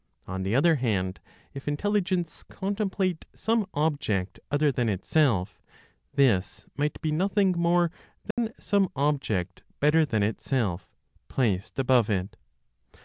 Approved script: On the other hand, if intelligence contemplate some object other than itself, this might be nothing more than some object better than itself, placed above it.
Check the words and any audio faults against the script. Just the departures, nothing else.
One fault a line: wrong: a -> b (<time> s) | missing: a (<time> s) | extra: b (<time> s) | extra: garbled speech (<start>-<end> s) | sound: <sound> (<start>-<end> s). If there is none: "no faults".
sound: dropout (8.3-8.4 s)